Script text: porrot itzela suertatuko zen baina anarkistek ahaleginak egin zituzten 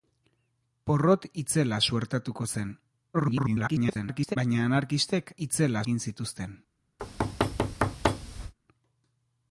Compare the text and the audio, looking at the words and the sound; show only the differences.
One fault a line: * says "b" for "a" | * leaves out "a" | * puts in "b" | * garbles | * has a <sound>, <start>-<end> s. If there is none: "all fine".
* garbles
* says "itzela" for "ahaleginak"
* has a thud, 7.0-8.5 s